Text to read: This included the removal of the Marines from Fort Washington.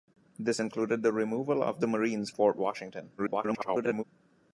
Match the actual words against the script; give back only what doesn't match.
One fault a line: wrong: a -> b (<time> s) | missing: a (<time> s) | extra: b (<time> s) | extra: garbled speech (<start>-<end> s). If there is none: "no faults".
missing: from (2.3 s)
extra: garbled speech (3.2-4.0 s)